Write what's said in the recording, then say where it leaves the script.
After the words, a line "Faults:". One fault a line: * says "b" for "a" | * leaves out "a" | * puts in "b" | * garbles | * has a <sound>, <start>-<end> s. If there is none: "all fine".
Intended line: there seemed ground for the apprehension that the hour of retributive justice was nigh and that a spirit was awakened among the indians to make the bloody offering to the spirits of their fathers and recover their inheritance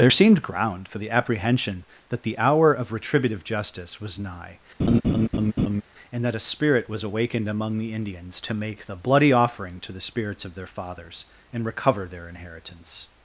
there seemed ground for the apprehension that the hour of retributive justice was nigh and that a spirit was awakened among the indians to make the bloody offering to the spirits of their fathers and recover their inheritance
Faults:
* has a laugh, 4.8-5.8 s